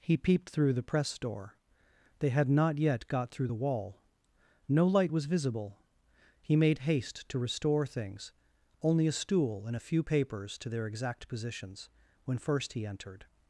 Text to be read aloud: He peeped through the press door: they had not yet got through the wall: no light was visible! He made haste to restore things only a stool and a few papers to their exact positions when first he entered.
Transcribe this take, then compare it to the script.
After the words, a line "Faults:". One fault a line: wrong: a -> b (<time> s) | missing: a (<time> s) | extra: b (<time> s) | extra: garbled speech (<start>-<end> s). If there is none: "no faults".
He peeped through the press door: they had not yet got through the wall: no light was visible! He made haste to restore things only a stool and a few papers to their exact positions when first he entered.
Faults:
no faults